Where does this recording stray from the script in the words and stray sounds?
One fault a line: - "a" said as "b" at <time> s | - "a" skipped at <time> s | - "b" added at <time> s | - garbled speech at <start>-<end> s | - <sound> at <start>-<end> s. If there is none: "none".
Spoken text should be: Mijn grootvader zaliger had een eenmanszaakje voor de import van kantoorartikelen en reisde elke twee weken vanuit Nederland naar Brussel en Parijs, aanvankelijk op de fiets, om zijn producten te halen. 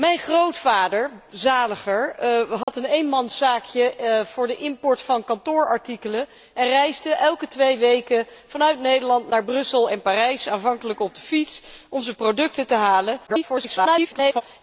- dropout at 2.6-2.7 s
- garbled speech at 13.3-14.4 s